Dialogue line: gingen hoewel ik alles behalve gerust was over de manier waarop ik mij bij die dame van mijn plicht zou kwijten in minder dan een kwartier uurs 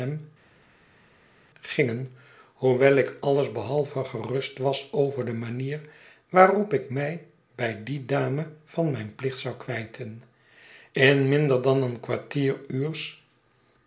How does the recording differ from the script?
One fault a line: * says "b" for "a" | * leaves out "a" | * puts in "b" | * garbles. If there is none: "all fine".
all fine